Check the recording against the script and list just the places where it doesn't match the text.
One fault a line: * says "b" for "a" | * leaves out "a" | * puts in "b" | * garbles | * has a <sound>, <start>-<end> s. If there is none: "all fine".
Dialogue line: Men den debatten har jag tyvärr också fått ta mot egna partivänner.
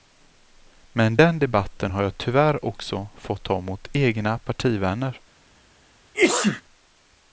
* has a sneeze, 6.1-6.6 s